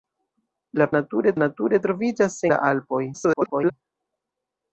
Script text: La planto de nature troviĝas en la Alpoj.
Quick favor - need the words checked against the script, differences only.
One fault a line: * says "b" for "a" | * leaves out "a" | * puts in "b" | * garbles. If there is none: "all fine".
* says "nature" for "planto"
* leaves out "en"
* garbles